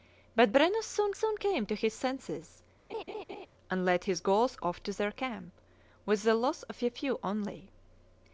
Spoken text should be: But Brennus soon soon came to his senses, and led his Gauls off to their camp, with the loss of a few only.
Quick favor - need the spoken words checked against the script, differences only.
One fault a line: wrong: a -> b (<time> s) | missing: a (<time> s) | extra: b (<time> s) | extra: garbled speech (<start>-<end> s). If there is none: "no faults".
no faults